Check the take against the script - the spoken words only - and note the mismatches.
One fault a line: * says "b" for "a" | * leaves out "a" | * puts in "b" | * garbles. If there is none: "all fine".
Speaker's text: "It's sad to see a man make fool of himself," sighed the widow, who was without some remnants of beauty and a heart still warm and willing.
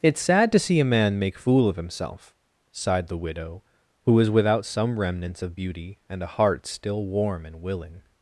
all fine